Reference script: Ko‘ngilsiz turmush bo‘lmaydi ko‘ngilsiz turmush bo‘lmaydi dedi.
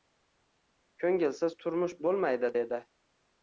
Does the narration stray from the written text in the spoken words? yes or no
yes